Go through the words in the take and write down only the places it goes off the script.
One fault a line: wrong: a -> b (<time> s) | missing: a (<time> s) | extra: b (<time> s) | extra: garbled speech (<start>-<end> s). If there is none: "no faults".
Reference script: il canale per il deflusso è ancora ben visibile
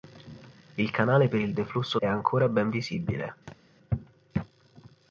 no faults